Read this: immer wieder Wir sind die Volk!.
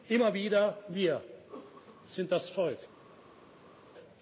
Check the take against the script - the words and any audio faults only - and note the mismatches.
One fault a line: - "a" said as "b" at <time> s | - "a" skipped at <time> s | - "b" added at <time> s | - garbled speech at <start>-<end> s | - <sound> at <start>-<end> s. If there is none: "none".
- "die" said as "das" at 2.3 s